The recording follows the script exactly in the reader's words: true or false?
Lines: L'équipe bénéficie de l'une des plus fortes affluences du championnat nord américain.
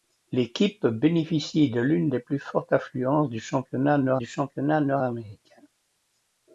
false